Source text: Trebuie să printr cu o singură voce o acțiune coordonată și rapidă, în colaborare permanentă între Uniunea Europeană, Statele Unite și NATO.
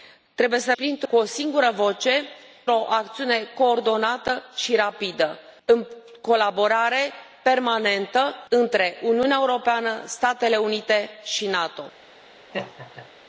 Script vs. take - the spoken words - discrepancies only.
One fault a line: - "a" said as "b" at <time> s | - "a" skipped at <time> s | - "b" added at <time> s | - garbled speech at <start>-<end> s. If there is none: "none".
none